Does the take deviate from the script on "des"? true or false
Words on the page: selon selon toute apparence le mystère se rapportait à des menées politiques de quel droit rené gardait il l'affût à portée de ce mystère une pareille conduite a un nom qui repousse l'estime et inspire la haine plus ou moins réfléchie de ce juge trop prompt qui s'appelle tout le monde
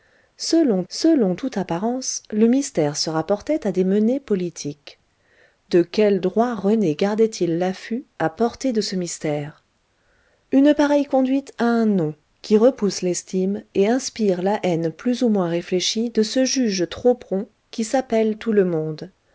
false